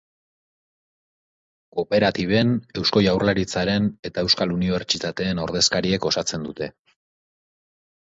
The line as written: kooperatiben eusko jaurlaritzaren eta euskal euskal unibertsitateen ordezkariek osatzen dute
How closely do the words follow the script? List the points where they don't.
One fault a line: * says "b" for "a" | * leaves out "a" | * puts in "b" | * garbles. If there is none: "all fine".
* leaves out "euskal"